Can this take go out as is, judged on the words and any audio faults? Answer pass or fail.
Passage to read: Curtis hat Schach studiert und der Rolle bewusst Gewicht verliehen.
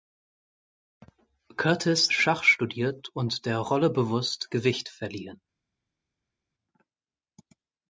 fail